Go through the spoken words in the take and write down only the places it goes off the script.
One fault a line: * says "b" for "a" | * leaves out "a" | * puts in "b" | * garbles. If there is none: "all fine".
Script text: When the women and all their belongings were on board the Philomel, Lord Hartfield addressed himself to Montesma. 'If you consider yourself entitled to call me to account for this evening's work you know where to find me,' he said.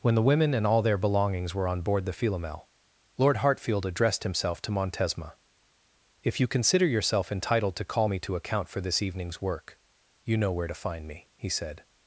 all fine